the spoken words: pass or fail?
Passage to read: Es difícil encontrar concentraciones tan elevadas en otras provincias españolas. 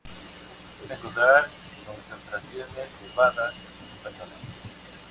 fail